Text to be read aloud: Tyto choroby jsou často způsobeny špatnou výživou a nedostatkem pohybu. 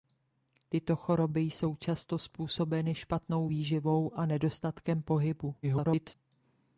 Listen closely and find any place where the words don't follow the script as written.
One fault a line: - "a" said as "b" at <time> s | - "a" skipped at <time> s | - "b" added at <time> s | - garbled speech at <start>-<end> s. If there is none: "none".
- garbled speech at 5.6-6.1 s